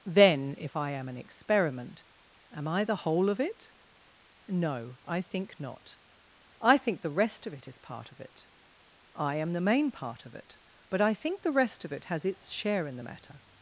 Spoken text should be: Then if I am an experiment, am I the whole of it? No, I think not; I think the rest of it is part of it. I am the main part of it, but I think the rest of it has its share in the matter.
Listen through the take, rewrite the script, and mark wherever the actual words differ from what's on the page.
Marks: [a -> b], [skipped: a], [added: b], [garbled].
Then if I am an experiment, am I the whole of it? No, I think not; I think the rest of it is part of it. I am the main part of it, but I think the rest of it has its share in the matter.